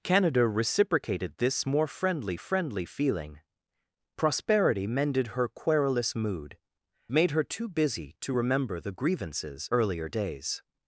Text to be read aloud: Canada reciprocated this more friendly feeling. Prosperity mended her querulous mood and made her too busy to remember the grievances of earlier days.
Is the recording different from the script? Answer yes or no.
yes